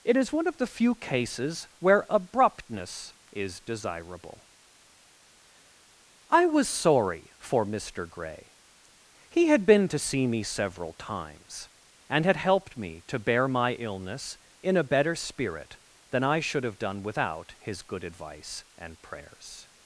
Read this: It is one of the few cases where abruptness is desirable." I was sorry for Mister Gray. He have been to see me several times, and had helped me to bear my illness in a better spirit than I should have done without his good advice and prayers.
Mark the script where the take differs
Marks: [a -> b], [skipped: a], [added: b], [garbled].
It is one of the few cases where abruptness is desirable." I was sorry for Mister Gray. He [have -> had] been to see me several times, and had helped me to bear my illness in a better spirit than I should have done without his good advice and prayers.